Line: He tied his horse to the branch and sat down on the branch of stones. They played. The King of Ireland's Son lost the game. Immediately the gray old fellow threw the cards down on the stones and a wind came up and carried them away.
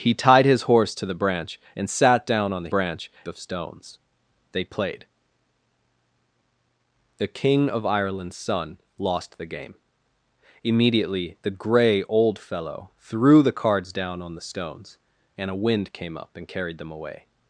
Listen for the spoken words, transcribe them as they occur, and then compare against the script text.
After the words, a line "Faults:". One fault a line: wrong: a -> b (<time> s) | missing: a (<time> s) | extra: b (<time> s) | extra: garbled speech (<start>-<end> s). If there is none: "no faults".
He tied his horse to the branch and sat down on the branch of stones. They played. The King of Ireland's Son lost the game. Immediately the gray old fellow threw the cards down on the stones and a wind came up and carried them away.
Faults:
no faults